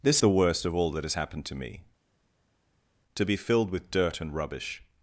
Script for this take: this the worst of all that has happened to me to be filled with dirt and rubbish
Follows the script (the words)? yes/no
yes